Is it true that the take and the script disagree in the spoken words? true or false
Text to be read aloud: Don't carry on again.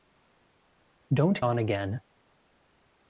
true